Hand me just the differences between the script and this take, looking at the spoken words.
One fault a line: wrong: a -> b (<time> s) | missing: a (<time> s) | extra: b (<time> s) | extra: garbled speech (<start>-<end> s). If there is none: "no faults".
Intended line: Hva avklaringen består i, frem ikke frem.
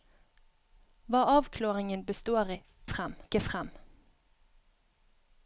no faults